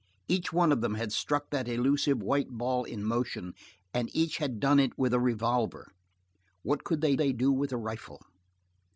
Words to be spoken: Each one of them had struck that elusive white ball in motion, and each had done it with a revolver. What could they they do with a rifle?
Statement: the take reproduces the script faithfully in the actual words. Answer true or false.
true